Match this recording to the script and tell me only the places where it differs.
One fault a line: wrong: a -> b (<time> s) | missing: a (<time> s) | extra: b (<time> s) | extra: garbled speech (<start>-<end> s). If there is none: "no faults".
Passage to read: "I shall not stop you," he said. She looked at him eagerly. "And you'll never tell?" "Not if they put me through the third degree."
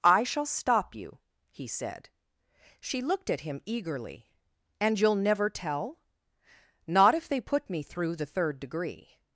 missing: not (0.5 s)